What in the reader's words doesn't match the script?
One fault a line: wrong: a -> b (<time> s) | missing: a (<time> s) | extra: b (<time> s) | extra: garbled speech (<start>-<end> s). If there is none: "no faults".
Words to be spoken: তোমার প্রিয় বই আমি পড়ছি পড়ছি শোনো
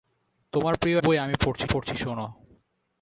no faults